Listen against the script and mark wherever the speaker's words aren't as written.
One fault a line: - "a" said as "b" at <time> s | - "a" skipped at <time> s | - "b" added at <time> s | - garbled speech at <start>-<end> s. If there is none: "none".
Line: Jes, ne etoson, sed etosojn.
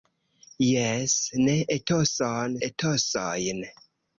- "sed" skipped at 2.6 s